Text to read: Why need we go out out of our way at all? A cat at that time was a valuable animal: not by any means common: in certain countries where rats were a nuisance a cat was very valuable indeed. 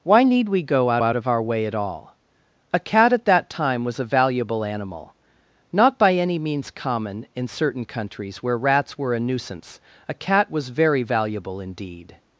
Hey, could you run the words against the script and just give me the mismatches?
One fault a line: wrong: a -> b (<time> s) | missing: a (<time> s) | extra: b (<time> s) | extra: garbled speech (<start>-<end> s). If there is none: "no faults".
no faults